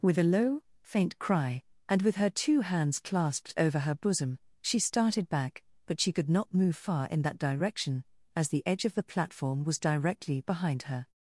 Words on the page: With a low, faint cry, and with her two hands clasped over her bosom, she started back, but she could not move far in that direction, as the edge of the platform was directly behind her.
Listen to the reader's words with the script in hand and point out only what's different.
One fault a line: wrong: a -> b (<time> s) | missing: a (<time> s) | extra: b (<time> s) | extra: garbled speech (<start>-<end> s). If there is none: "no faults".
no faults